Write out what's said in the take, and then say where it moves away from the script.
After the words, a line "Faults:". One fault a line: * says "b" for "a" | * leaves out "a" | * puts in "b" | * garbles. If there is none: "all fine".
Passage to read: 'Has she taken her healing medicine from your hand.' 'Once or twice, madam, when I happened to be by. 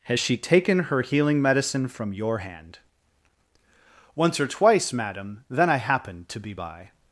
'Has she taken her healing medicine from your hand.' 'Once or twice, madam, then I happened to be by.
Faults:
* says "then" for "when"